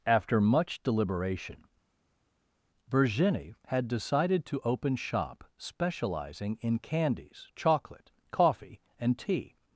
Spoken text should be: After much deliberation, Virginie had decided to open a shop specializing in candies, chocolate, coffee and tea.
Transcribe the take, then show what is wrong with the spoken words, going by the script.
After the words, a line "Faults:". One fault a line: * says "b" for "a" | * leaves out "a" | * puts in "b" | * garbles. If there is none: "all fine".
After much deliberation, Virginie had decided to open shop specializing in candies, chocolate, coffee and tea.
Faults:
* leaves out "a"